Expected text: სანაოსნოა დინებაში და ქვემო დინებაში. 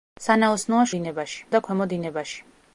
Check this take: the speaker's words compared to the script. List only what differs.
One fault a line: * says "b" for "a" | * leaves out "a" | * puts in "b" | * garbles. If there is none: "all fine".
all fine